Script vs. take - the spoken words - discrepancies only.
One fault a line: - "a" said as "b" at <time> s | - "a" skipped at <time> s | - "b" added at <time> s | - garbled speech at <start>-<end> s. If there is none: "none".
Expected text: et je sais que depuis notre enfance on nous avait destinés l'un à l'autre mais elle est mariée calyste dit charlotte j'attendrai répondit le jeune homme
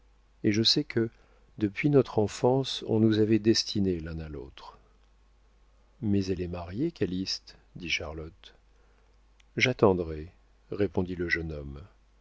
none